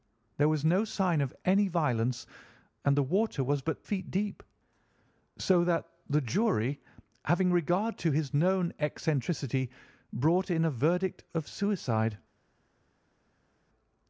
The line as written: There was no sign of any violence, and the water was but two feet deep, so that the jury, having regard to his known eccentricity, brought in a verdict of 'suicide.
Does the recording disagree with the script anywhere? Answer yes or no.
yes